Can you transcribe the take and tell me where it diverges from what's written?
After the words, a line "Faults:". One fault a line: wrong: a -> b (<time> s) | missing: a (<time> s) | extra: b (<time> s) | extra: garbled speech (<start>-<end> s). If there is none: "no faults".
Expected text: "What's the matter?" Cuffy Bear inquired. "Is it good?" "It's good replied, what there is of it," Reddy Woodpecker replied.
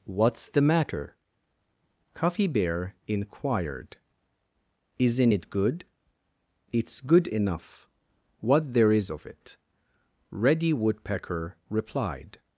"What's the matter?" Cuffy Bear inquired. "Isn't it good?" "It's good enough, what there is of it," Reddy Woodpecker replied.
Faults:
wrong: Is -> Isn't (5.0 s)
wrong: replied -> enough (7.3 s)